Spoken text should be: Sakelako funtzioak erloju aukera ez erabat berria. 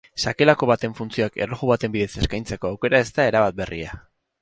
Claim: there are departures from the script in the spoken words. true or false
true